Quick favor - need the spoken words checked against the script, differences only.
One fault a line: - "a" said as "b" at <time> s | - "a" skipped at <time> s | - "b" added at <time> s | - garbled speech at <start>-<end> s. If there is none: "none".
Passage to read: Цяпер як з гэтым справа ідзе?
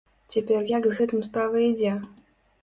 none